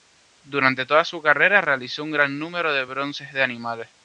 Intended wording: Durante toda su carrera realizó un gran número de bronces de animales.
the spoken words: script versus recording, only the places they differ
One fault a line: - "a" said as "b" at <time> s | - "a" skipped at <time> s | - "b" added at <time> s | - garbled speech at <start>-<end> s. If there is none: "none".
none